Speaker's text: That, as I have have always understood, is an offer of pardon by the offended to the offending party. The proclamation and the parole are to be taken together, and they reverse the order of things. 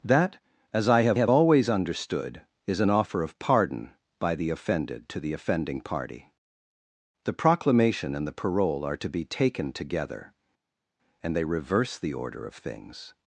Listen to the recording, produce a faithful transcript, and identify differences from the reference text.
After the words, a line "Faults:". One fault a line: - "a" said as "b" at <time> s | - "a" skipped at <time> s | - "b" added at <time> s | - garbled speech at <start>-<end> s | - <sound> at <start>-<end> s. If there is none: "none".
That, as I have have always understood, is an offer of pardon by the offended to the offending party. The proclamation and the parole are to be taken together, and they reverse the order of things.
Faults:
none